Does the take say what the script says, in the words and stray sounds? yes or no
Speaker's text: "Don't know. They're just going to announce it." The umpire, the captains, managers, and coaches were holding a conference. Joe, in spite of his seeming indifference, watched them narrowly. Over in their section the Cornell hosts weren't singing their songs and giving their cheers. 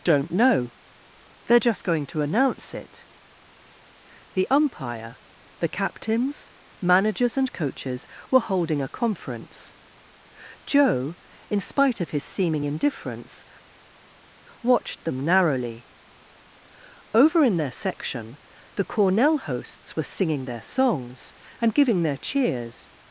no